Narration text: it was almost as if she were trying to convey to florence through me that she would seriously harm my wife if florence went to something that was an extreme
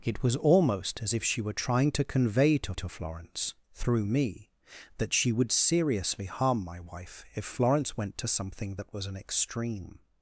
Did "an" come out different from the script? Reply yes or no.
no